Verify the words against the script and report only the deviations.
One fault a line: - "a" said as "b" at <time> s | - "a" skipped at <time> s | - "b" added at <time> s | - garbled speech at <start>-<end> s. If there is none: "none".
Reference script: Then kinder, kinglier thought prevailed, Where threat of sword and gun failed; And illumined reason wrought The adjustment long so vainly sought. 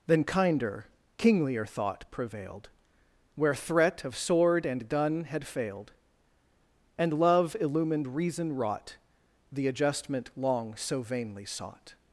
- "had" added at 5.2 s
- "love" added at 7.1 s